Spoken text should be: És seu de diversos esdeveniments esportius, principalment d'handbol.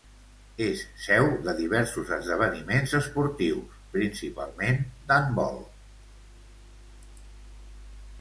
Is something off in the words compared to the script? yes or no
no